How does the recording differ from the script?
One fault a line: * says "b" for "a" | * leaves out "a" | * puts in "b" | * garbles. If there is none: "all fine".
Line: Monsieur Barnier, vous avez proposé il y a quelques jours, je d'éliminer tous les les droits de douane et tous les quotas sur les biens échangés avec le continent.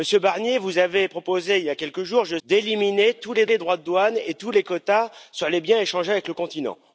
all fine